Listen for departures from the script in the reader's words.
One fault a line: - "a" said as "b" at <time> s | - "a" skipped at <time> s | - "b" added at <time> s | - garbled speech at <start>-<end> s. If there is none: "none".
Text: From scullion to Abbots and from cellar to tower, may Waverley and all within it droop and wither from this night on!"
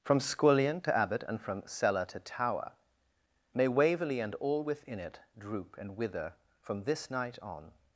- "Abbots" said as "Abbot" at 1.0 s